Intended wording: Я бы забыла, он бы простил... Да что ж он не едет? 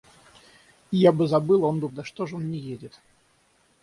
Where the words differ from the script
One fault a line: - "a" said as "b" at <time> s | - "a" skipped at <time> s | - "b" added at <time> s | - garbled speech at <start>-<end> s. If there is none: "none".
- "простил" skipped at 1.9 s